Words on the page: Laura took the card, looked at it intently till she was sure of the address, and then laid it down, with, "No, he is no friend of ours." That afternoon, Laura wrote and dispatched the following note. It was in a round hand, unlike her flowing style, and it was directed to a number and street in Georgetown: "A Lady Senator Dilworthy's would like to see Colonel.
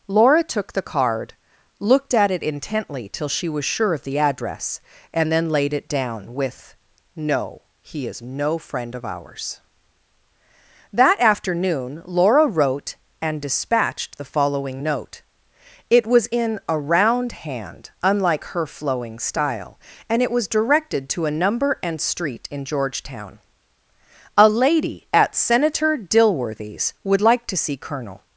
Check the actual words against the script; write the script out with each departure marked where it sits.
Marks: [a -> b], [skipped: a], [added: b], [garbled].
Laura took the card, looked at it intently till she was sure of the address, and then laid it down, with, "No, he is no friend of ours." That afternoon, Laura wrote and dispatched the following note. It was in a round hand, unlike her flowing style, and it was directed to a number and street in Georgetown: "A Lady [added: at] Senator Dilworthy's would like to see Colonel.